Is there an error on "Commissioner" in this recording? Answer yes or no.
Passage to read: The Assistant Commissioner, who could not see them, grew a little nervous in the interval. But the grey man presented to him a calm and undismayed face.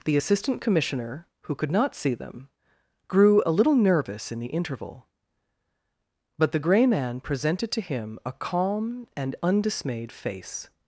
no